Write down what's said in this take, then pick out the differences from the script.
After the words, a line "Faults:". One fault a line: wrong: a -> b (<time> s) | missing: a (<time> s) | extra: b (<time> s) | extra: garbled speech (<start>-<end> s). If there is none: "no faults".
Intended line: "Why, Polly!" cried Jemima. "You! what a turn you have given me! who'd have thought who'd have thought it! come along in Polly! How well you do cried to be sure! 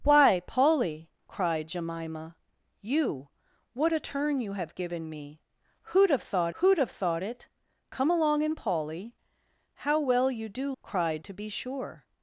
"Why, Polly!" cried Jemima. "You! what a turn you have given me! who'd have thought who'd have thought it! come along in Polly! How well you do cried to be sure!
Faults:
no faults